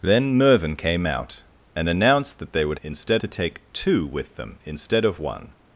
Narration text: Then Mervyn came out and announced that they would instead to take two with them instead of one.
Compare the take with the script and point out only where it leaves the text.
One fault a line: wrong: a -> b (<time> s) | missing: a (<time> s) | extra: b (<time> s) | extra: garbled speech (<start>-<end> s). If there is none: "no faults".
no faults